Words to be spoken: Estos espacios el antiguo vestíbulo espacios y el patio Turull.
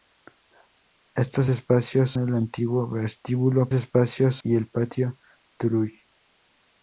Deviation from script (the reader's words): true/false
false